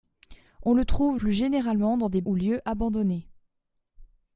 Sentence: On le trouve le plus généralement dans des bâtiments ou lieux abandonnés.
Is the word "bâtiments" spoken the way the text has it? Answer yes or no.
no